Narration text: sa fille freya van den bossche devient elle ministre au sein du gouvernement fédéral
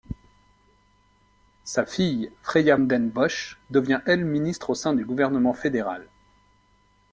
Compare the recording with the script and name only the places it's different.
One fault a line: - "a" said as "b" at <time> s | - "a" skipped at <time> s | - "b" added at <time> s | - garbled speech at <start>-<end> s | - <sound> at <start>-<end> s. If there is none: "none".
- "van" skipped at 2.8 s